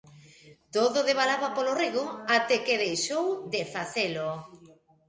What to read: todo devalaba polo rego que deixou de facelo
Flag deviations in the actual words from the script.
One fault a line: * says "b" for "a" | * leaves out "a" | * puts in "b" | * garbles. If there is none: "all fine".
* puts in "até"